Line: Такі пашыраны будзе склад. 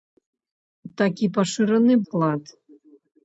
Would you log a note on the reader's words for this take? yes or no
yes